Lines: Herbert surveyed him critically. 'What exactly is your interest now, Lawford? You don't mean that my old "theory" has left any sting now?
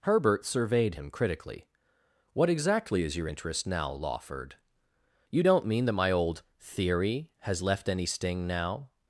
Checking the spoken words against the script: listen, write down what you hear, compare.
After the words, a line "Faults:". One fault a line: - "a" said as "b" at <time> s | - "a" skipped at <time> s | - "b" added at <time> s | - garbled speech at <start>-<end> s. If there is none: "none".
Herbert surveyed him critically. 'What exactly is your interest now, Lawford? You don't mean that my old "theory" has left any sting now?
Faults:
none